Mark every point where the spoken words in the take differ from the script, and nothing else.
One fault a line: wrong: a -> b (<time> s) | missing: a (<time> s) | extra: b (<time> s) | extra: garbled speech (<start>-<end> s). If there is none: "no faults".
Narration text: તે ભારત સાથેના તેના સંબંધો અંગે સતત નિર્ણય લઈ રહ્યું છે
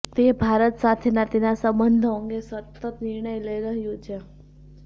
no faults